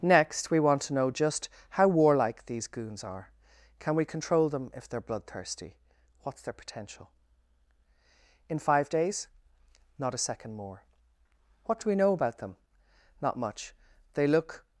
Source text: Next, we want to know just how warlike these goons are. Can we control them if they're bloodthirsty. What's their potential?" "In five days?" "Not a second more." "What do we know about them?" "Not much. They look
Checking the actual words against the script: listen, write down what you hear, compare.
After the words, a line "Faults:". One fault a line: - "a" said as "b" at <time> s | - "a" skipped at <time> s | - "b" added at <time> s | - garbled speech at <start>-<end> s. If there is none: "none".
Next, we want to know just how warlike these goons are. Can we control them if they're bloodthirsty. What's their potential?" "In five days?" "Not a second more." "What do we know about them?" "Not much. They look
Faults:
none